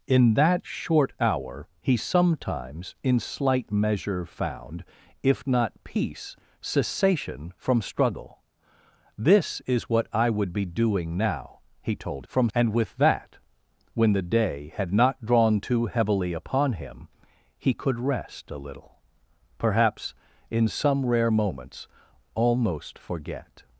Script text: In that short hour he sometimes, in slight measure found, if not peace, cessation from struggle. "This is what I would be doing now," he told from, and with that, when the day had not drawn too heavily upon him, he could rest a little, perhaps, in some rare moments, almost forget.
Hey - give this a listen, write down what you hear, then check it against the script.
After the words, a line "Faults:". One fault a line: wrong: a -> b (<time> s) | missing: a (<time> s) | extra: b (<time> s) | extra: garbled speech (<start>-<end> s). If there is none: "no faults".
In that short hour he sometimes, in slight measure found, if not peace, cessation from struggle. "This is what I would be doing now," he told from, and with that, when the day had not drawn too heavily upon him, he could rest a little, perhaps, in some rare moments, almost forget.
Faults:
no faults